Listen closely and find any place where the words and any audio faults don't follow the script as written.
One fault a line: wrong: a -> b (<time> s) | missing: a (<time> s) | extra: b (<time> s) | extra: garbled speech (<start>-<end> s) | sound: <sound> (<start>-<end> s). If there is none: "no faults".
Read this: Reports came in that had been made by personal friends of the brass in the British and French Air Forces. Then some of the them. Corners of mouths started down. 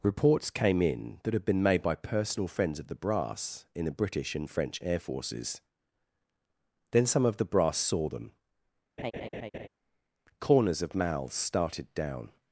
extra: brass saw (7.5 s)
sound: laugh (9.0-9.7 s)